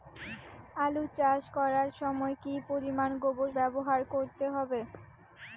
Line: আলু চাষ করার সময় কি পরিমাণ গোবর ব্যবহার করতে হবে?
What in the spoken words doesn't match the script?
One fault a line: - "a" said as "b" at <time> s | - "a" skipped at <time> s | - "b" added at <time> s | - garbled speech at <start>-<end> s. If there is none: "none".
none